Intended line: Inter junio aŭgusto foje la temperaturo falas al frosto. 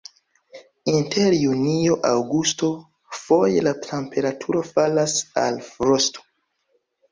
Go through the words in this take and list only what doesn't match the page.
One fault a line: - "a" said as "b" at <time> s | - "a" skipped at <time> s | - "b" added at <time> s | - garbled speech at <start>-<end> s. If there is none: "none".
none